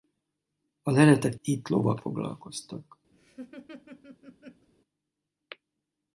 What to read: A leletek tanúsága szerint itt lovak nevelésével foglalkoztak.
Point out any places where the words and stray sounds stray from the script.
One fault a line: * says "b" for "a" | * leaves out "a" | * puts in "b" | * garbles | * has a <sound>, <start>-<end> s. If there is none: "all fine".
* leaves out "tanúsága szerint"
* leaves out "nevelésével"
* has a laugh, 3.1-4.7 s